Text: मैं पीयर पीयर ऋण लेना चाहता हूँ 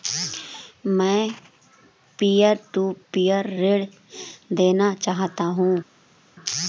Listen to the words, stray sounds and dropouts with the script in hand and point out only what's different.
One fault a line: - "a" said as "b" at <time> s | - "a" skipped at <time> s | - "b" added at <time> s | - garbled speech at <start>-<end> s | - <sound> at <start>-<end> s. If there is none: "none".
- "टू" added at 2.7 s